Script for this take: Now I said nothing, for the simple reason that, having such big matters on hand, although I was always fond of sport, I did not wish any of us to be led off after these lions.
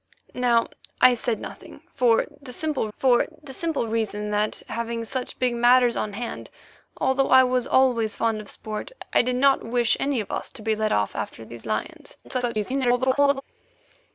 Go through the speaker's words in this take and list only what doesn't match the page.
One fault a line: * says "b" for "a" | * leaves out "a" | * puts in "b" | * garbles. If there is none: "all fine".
* puts in "for the simple"
* garbles